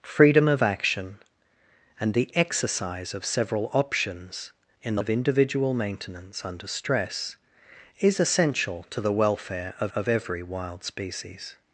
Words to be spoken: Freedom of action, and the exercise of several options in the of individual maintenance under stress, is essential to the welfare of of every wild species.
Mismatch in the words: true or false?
false